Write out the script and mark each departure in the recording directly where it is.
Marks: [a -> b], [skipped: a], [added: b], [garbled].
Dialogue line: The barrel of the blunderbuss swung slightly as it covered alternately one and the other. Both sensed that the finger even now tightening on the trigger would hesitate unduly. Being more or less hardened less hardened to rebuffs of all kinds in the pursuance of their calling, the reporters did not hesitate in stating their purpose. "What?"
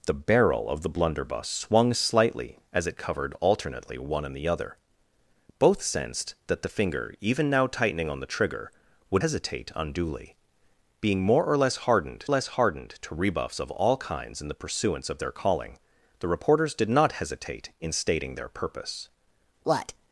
The barrel of the blunderbuss swung slightly as it covered alternately one and the other. Both sensed that the finger even now tightening on the trigger would hesitate unduly. Being more or less hardened less hardened to rebuffs of all kinds in the pursuance of their calling, the reporters did not hesitate in stating their purpose. "What?"